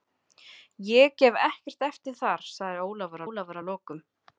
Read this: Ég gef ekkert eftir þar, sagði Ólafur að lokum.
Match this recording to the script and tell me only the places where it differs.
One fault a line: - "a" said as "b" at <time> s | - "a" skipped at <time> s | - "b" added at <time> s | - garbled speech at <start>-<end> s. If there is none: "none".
- "Ólafur" added at 3.3 s